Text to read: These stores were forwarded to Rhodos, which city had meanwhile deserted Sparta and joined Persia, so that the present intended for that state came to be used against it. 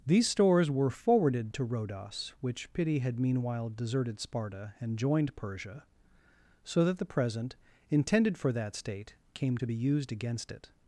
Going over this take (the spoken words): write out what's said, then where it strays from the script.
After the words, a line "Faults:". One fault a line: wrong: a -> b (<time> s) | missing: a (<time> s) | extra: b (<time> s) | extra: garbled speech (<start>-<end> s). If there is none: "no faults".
These stores were forwarded to Rhodos, which pity had meanwhile deserted Sparta and joined Persia, so that the present intended for that state came to be used against it.
Faults:
wrong: city -> pity (2.7 s)